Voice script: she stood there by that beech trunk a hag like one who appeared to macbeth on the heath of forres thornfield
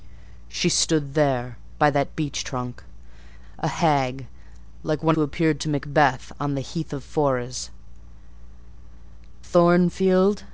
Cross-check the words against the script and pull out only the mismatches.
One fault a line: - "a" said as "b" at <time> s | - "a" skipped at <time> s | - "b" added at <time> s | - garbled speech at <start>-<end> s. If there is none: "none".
none